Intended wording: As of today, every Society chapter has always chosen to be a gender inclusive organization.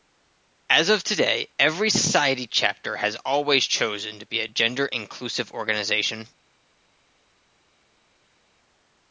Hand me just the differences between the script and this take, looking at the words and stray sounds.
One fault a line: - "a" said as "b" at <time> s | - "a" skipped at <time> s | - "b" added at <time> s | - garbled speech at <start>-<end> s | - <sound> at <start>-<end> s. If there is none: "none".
none